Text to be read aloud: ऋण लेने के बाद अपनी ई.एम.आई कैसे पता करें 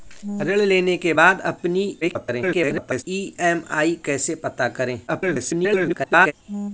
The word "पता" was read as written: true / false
true